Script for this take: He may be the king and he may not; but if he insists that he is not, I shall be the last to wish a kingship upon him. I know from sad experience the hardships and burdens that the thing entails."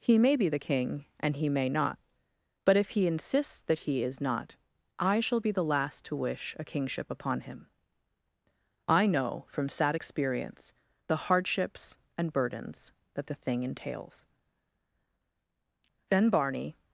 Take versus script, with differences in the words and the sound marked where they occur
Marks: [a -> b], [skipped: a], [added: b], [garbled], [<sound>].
He may be the king and he may not; but if he insists that he is not, I shall be the last to wish a kingship upon him. I know from sad experience the hardships and burdens that the thing entails." [added: Then Barney]